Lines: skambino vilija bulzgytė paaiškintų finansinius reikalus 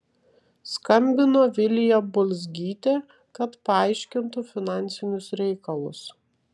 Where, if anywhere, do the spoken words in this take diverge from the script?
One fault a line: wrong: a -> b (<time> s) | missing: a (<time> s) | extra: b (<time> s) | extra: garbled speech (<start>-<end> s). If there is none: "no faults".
extra: kad (3.4 s)